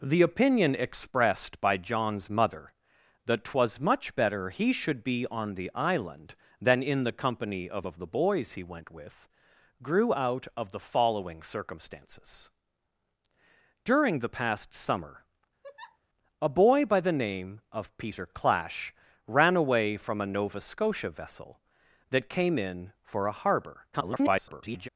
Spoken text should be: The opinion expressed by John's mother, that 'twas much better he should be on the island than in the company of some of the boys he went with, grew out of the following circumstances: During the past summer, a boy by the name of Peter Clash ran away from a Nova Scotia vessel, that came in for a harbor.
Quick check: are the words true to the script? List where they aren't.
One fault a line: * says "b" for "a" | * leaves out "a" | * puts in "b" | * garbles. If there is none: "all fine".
* leaves out "some"
* garbles